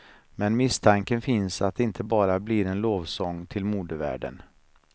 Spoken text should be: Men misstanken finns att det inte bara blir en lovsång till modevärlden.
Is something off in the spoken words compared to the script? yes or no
no